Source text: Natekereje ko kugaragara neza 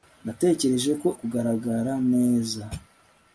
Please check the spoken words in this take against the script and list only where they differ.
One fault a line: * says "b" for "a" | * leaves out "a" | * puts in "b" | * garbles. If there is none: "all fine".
all fine